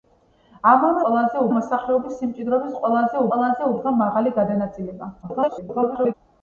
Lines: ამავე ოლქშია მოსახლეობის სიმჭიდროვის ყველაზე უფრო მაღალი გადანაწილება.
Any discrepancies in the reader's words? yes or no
yes